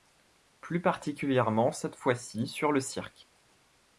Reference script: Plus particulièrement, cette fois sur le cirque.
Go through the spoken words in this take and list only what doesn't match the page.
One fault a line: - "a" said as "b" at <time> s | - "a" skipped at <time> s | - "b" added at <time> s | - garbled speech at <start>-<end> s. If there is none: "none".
- "ci" added at 2.1 s